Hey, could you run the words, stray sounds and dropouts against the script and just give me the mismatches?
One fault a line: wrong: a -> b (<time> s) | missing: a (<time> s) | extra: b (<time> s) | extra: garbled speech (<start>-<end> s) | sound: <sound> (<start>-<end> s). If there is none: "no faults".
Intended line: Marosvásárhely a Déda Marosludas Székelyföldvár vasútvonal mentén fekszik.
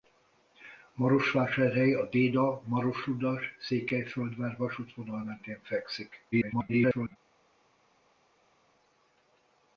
extra: garbled speech (6.3-7.2 s)